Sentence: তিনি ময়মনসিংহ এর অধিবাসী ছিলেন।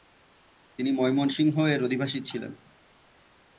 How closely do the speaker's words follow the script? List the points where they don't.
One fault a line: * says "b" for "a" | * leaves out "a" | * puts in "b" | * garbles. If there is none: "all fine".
all fine